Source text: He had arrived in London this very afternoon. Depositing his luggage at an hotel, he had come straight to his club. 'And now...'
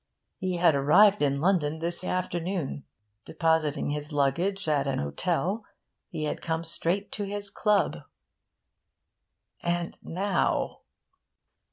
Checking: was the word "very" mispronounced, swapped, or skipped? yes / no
yes